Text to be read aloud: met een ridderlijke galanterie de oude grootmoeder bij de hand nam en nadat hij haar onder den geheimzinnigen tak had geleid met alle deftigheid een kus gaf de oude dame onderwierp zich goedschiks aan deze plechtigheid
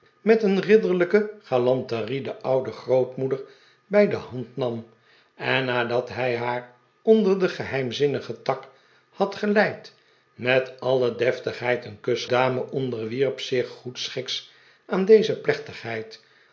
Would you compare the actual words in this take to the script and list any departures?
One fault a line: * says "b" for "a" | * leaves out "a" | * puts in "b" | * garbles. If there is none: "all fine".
* leaves out "gaf de oude"